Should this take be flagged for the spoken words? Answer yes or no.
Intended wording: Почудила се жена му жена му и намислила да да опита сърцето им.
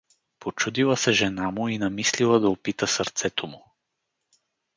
yes